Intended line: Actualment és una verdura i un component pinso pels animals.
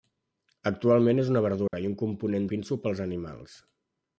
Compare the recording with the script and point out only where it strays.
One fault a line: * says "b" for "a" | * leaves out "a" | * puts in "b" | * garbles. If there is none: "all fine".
all fine